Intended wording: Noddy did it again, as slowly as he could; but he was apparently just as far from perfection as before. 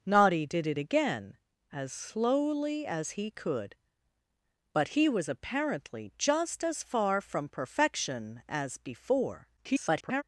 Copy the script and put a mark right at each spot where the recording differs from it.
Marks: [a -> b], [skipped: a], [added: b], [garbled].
Noddy did it again, as slowly as he could; but he was apparently just as far from perfection as before. [garbled]